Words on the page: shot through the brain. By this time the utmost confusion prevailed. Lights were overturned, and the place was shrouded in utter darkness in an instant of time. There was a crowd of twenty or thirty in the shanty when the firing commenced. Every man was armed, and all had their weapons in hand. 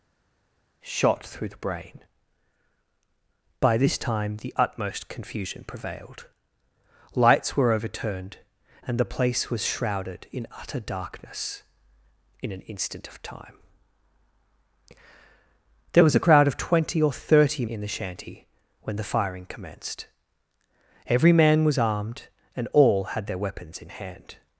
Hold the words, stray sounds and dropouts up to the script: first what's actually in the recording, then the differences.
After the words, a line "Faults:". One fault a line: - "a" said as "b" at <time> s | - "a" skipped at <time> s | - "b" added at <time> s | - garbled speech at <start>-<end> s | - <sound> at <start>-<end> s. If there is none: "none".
shot through the brain. By this time the utmost confusion prevailed. Lights were overturned, and the place was shrouded in utter darkness in an instant of time. There was a crowd of twenty or thirty in the shanty when the firing commenced. Every man was armed, and all had their weapons in hand.
Faults:
none